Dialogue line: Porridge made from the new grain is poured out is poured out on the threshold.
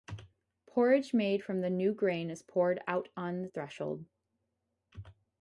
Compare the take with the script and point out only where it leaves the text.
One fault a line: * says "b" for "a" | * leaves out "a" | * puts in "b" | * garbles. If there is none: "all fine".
* leaves out "is poured out"